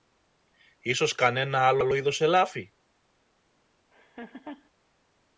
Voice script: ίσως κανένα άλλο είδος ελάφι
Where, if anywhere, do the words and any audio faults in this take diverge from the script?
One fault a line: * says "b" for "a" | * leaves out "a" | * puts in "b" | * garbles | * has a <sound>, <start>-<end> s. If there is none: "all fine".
* puts in "άλλο"
* has a laugh, 3.9-4.7 s